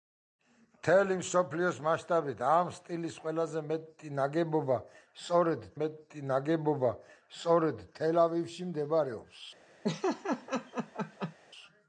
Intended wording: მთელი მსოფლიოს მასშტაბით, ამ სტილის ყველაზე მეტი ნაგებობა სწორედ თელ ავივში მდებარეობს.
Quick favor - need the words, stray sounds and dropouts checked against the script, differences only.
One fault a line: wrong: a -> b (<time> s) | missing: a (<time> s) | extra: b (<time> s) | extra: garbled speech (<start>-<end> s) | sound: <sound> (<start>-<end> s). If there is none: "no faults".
extra: მეტი ნაგებობა სწორედ (5.8 s)
sound: laugh (9.8-11.3 s)